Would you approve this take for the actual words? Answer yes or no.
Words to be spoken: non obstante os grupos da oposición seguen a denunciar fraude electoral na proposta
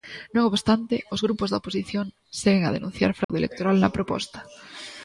yes